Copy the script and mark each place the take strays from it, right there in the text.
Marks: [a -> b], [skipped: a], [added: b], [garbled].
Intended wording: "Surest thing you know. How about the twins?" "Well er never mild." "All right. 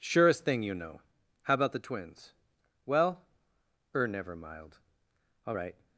"Surest thing you know. How about the twins?" "Well er never mild." "All right.